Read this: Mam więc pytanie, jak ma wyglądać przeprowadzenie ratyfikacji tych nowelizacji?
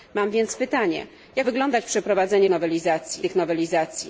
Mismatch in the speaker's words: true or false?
true